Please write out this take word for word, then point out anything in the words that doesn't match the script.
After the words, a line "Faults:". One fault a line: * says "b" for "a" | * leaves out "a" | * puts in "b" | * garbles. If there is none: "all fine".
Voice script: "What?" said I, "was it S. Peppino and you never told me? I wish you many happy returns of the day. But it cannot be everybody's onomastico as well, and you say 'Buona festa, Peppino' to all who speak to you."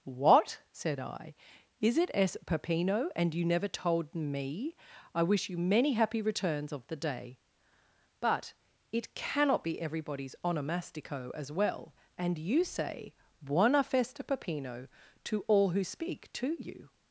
"What?" said I, "is it S. Peppino and you never told me? I wish you many happy returns of the day. But it cannot be everybody's onomastico as well, and you say 'Buona festa, Peppino' to all who speak to you."
Faults:
* says "is" for "was"